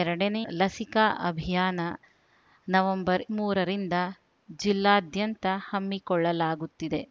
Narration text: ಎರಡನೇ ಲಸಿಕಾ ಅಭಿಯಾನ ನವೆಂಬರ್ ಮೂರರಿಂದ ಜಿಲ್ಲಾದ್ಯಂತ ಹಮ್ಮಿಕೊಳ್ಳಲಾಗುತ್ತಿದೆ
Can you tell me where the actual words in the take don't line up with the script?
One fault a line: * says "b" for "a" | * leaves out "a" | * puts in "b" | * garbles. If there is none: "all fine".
all fine